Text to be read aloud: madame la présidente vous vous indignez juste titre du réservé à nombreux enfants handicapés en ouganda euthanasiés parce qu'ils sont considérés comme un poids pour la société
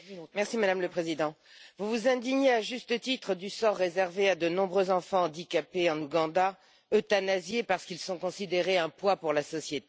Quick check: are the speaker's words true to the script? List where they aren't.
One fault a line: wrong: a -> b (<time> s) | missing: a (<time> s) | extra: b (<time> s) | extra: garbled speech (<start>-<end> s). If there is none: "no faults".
extra: à (2.5 s)
extra: sort (3.5 s)
extra: de (4.4 s)